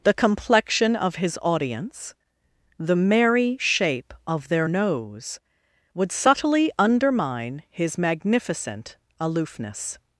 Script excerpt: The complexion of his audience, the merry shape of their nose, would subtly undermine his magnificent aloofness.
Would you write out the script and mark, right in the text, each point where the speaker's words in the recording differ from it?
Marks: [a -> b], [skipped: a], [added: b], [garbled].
The complexion of his audience, the merry shape of their nose, would subtly undermine his magnificent aloofness.